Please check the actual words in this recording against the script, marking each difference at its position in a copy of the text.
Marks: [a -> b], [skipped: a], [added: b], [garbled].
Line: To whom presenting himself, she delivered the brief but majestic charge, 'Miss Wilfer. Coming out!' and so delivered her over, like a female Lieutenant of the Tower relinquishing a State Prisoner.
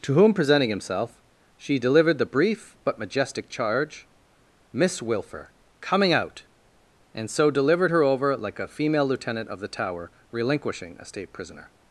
To whom presenting himself, she delivered the brief but majestic charge, 'Miss Wilfer. Coming out!' and so delivered her over, like a female Lieutenant of the Tower relinquishing a State Prisoner.